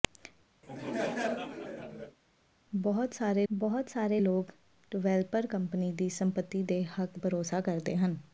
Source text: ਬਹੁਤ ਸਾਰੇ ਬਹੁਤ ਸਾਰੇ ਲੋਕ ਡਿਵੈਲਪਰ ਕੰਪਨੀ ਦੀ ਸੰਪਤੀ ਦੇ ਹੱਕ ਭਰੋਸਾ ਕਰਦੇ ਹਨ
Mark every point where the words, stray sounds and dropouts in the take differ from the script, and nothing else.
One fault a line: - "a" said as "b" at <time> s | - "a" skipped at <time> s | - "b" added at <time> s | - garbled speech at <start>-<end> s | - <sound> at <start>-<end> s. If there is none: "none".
- laugh at 0.6-2.2 s